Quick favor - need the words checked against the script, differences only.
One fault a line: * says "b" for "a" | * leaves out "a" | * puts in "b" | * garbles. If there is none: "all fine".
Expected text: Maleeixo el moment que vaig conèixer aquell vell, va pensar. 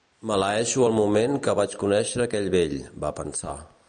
all fine